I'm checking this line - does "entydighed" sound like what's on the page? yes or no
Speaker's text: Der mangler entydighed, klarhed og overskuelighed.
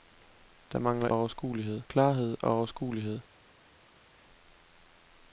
no